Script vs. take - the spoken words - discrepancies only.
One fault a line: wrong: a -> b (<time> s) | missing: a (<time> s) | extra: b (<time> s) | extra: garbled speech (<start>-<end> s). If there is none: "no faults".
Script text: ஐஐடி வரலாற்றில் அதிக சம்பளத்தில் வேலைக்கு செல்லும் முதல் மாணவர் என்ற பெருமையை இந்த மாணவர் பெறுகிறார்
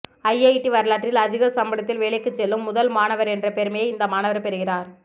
no faults